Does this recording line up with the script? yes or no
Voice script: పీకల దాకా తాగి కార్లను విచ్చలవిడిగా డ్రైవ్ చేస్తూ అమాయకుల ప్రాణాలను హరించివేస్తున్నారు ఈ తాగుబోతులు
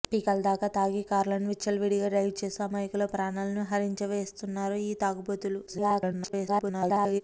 no